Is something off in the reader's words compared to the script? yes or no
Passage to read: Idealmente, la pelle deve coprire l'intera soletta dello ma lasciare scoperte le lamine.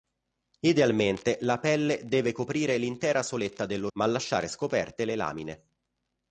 no